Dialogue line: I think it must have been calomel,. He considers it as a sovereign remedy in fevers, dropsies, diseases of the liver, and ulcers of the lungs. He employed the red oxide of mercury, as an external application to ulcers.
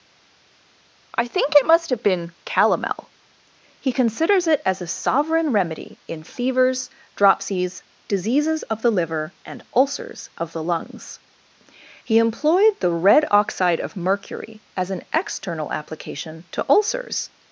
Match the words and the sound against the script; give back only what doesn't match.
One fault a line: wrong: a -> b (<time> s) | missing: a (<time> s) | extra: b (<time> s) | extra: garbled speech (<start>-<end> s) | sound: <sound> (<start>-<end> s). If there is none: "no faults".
no faults